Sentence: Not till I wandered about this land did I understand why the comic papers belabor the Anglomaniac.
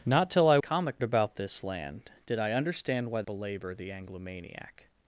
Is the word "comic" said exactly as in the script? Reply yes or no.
no